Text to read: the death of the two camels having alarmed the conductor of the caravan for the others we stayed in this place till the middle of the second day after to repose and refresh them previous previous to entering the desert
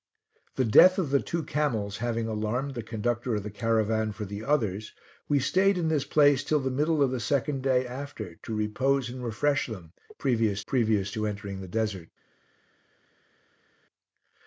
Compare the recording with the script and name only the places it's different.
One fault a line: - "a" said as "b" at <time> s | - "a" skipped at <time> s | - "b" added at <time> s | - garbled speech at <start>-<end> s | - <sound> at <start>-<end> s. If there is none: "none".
none